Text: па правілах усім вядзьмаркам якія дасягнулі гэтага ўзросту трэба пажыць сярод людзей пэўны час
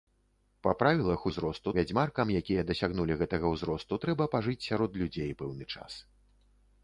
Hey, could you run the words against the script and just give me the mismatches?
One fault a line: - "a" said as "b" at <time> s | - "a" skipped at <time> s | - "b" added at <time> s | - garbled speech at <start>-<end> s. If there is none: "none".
- "усім" said as "ўзросту" at 1.3 s